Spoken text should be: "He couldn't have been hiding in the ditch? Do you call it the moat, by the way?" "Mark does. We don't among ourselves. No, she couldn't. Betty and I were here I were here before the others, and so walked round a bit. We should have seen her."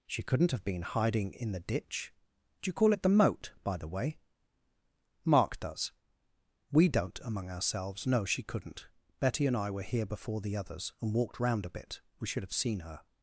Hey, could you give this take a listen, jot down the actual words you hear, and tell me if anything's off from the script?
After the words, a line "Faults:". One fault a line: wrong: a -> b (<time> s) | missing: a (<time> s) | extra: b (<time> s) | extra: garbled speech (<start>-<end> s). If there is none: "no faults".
"She couldn't have been hiding in the ditch? Do you call it the moat, by the way?" "Mark does. We don't among ourselves. No, she couldn't. Betty and I were here before the others, and walked round a bit. We should have seen her."
Faults:
wrong: He -> She (0.1 s)
missing: I were here (10.1 s)
missing: so (11.1 s)